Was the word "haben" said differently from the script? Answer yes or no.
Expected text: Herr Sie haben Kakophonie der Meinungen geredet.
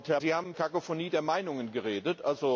no